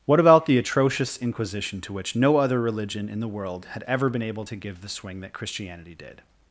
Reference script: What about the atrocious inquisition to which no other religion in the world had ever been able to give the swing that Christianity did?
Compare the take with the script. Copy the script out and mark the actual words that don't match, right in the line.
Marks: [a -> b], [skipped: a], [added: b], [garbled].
What about the atrocious inquisition to which no other religion in the world had ever been able to give the swing that Christianity did?